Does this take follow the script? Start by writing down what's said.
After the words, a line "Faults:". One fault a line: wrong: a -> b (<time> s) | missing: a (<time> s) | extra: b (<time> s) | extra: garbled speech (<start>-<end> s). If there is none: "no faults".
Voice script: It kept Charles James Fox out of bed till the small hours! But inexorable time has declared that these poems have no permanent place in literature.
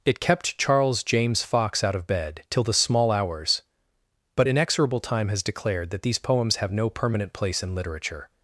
It kept Charles James Fox out of bed till the small hours! But inexorable time has declared that these poems have no permanent place in literature.
Faults:
no faults